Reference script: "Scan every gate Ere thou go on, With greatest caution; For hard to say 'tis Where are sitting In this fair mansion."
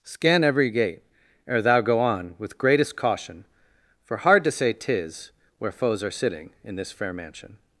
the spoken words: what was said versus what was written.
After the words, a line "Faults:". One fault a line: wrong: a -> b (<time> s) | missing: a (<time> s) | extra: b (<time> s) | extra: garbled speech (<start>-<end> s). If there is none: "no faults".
"Scan every gate Ere thou go on, With greatest caution; For hard to say 'tis Where foes are sitting In this fair mansion."
Faults:
extra: foes (5.7 s)